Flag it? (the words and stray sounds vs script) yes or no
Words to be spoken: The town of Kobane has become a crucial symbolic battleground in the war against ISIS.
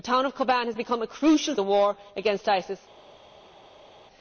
yes